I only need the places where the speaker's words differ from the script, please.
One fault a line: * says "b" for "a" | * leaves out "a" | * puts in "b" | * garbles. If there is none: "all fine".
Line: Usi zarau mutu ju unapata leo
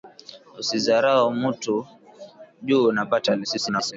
* garbles